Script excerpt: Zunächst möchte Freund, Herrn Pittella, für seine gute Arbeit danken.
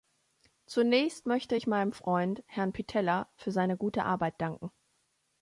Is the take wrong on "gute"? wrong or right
right